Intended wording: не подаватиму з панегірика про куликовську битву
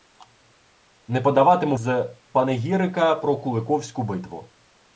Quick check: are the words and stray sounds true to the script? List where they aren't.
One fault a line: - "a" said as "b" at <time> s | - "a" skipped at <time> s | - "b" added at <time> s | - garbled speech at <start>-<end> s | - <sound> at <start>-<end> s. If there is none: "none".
none